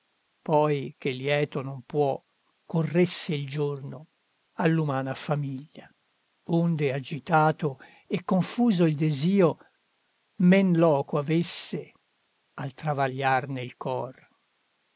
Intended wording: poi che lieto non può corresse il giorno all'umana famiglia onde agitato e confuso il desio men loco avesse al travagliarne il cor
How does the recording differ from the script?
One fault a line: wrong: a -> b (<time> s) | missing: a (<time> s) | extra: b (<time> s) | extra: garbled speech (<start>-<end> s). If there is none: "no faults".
no faults